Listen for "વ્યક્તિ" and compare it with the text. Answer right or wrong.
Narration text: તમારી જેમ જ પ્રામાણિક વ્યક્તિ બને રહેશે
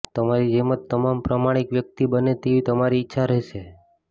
right